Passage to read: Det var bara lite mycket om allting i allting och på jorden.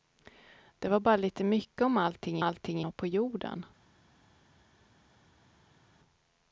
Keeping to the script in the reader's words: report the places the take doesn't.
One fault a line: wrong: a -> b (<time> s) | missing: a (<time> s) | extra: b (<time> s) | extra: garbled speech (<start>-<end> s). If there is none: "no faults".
no faults